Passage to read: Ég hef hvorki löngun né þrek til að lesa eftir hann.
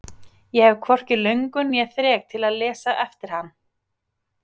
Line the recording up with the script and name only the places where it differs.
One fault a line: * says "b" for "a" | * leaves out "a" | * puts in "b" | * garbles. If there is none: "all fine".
all fine